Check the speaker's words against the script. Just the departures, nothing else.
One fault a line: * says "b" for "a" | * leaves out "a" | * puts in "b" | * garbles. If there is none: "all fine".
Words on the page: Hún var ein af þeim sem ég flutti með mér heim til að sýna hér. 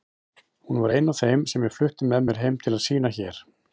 all fine